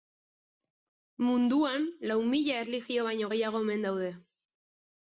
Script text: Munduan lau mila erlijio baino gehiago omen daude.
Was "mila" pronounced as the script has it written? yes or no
yes